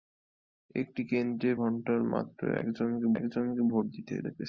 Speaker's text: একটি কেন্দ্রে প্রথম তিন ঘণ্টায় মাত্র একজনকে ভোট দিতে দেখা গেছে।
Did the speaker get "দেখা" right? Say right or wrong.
wrong